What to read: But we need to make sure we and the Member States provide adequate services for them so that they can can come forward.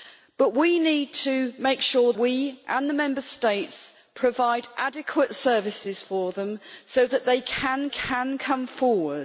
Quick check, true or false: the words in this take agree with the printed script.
true